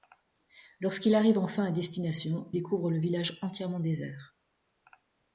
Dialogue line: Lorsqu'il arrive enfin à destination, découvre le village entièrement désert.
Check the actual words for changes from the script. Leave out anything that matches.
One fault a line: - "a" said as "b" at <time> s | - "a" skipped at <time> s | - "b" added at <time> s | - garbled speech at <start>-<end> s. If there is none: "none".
none